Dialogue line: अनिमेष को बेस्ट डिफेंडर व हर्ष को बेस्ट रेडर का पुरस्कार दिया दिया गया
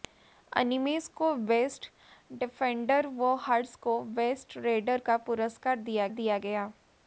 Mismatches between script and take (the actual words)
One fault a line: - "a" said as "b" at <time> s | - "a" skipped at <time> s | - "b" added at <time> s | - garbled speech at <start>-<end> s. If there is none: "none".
none